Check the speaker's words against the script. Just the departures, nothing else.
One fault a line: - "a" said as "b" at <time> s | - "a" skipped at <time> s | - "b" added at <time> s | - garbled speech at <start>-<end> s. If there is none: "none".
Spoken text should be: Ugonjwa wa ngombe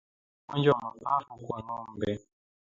- "mapafu kwa" added at 0.8 s